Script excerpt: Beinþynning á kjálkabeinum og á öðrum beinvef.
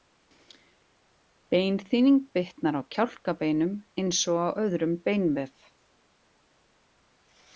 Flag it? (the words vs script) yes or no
yes